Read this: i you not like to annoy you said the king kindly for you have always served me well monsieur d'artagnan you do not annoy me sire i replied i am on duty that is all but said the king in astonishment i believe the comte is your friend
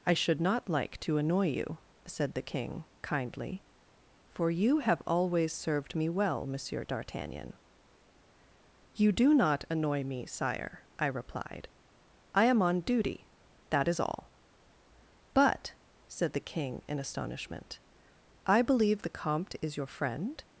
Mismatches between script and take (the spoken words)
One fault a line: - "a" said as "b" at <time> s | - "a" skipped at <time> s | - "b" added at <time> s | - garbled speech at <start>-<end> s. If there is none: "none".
- "you" said as "should" at 0.1 s